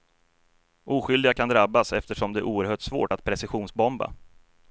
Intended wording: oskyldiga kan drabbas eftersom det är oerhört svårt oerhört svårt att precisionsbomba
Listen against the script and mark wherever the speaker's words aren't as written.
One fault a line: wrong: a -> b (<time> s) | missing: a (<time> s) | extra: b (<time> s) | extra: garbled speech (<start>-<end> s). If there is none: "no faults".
missing: oerhört svårt (3.1 s)